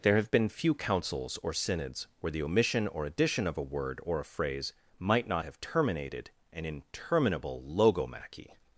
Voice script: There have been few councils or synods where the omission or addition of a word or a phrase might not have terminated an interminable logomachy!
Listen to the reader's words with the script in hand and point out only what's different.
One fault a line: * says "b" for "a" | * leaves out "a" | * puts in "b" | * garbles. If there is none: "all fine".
all fine